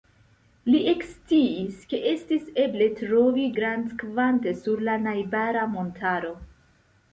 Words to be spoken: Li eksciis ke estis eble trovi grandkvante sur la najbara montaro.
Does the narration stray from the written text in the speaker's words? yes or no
no